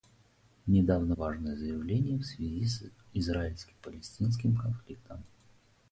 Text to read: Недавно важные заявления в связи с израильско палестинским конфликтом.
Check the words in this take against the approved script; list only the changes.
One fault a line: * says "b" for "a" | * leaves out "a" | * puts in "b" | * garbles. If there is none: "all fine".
all fine